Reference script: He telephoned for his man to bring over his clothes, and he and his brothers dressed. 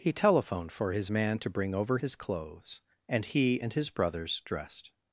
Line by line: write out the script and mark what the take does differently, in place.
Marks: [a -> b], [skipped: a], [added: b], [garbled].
He telephoned for his man to bring over his clothes, and he and his brothers dressed.